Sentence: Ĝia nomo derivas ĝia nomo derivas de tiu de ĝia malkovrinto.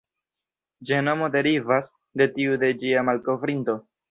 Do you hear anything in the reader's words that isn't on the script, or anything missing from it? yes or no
yes